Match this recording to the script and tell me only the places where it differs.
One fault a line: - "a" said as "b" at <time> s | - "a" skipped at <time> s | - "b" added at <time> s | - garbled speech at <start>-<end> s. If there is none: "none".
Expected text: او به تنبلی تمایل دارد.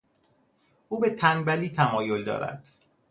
none